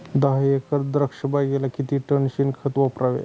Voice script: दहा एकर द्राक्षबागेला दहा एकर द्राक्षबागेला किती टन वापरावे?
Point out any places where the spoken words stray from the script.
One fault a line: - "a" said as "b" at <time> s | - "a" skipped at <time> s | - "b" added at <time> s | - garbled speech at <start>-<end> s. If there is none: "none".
- "दहा एकर द्राक्षबागेला" skipped at 1.7 s
- "शेणखत" added at 2.3 s